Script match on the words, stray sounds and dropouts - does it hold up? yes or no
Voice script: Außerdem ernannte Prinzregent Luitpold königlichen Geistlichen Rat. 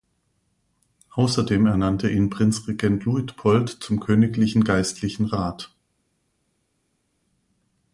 no